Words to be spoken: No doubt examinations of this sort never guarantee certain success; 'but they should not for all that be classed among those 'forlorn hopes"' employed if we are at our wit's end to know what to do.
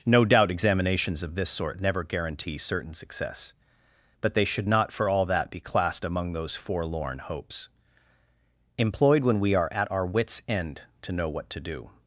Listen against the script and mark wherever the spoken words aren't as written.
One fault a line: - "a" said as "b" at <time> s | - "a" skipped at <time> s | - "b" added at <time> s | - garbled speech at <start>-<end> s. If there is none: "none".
- "if" said as "when" at 9.2 s